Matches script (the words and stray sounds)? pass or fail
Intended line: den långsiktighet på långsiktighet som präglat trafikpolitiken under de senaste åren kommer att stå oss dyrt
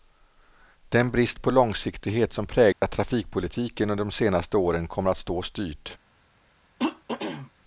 fail